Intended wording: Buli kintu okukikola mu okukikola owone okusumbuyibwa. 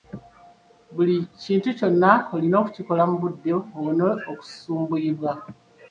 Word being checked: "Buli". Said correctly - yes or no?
yes